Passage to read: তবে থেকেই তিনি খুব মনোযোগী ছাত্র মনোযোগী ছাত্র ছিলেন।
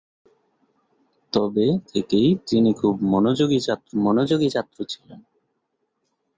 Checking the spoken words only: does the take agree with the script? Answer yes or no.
yes